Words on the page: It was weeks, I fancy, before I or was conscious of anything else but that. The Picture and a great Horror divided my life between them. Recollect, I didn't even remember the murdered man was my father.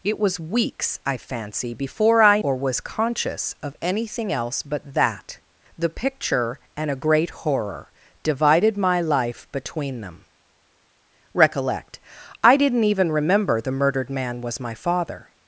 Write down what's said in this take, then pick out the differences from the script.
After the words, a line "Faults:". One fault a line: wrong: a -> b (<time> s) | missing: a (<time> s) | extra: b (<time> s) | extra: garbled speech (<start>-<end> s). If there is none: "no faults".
It was weeks, I fancy, before I or was conscious of anything else but that. The Picture and a great Horror divided my life between them. Recollect, I didn't even remember the murdered man was my father.
Faults:
no faults